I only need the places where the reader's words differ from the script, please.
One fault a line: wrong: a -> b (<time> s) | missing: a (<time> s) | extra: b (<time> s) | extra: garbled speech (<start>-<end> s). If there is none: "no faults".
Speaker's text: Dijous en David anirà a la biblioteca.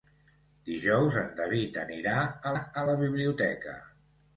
extra: a (2.6 s)